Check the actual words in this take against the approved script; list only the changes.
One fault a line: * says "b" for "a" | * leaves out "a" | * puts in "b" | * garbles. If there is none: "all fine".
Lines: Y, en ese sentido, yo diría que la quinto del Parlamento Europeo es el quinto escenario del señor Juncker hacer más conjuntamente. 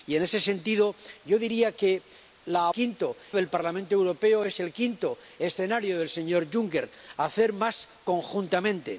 all fine